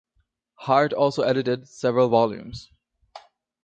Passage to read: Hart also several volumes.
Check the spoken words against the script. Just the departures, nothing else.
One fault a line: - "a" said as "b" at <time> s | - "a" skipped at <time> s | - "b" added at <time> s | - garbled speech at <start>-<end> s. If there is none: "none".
- "edited" added at 1.2 s